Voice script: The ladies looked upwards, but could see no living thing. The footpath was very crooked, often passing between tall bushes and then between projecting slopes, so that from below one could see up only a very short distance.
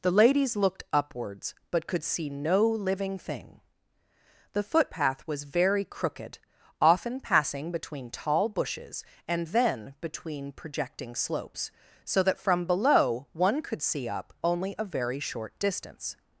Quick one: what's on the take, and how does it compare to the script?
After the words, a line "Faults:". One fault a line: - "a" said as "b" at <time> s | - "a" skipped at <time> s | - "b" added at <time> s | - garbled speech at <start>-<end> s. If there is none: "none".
The ladies looked upwards, but could see no living thing. The footpath was very crooked, often passing between tall bushes and then between projecting slopes, so that from below one could see up only a very short distance.
Faults:
none